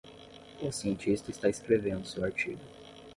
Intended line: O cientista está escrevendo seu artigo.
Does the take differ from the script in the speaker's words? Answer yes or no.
no